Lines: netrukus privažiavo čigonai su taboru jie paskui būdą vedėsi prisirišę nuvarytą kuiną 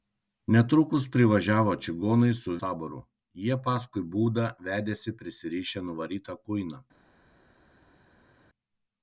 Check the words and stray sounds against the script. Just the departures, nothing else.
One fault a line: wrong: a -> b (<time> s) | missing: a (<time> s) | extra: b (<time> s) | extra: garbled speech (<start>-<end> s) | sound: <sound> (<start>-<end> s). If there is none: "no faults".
no faults